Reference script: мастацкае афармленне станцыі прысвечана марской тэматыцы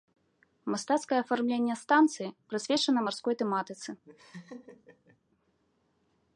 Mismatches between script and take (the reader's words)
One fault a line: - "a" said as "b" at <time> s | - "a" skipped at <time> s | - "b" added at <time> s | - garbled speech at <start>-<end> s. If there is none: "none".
none